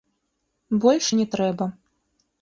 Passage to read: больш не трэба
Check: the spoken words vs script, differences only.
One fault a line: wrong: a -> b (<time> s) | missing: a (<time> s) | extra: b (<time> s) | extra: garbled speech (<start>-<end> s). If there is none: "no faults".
no faults